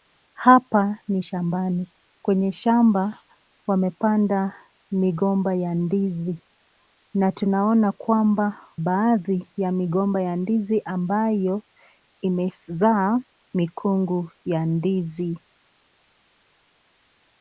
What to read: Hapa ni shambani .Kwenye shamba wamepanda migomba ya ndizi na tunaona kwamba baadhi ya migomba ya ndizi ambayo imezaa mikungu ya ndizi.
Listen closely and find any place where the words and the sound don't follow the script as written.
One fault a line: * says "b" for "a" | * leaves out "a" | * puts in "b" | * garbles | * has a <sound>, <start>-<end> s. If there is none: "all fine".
all fine